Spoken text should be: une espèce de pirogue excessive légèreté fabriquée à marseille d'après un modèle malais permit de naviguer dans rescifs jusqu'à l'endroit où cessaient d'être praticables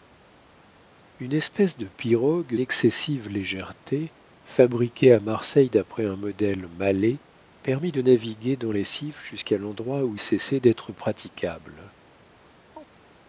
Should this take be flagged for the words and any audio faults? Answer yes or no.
yes